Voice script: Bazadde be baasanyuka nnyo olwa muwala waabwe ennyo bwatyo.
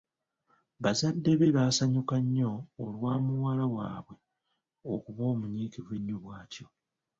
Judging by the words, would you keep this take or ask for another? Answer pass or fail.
fail